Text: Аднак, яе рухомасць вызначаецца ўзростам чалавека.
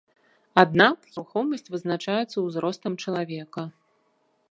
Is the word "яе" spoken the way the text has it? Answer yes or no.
no